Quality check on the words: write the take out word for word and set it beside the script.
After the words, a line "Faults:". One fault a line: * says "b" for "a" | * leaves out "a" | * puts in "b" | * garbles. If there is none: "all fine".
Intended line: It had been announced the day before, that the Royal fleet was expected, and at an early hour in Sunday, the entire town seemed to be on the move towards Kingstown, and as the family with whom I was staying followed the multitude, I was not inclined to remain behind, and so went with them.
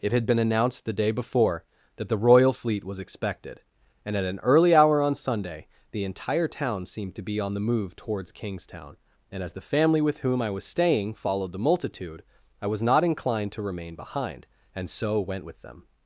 It had been announced the day before, that the Royal fleet was expected, and at an early hour on Sunday, the entire town seemed to be on the move towards Kingstown, and as the family with whom I was staying followed the multitude, I was not inclined to remain behind, and so went with them.
Faults:
* says "on" for "in"